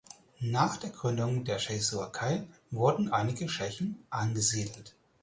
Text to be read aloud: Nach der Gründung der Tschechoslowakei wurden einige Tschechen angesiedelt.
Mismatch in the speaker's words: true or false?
false